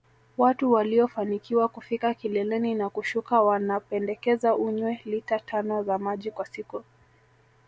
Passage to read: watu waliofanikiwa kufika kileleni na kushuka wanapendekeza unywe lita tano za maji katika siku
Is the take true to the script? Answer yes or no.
no